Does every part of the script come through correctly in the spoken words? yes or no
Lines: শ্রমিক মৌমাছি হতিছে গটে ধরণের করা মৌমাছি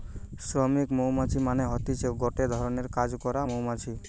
no